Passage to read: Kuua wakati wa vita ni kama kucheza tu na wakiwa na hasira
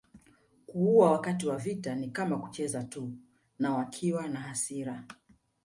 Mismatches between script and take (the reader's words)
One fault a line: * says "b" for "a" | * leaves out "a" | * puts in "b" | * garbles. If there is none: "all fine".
all fine